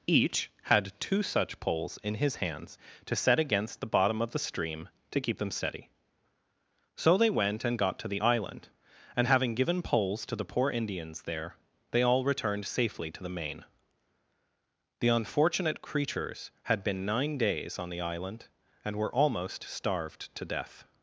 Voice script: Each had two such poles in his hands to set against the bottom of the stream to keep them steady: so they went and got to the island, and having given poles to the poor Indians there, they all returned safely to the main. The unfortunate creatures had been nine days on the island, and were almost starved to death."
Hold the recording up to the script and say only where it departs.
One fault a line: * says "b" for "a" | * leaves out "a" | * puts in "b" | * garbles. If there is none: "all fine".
all fine